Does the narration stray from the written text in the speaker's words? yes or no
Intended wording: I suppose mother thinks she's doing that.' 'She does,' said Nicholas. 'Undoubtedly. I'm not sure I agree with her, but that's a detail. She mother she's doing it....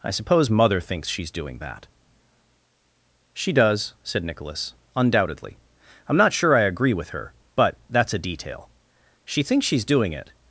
yes